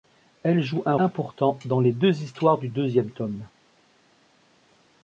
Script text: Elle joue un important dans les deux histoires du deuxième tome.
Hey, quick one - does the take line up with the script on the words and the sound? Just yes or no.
yes